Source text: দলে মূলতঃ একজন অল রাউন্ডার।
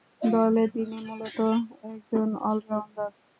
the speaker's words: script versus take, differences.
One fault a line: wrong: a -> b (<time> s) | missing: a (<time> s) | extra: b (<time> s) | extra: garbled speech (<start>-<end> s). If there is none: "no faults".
extra: তিনি (0.7 s)